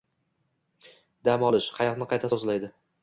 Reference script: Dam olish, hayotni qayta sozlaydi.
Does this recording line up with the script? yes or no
yes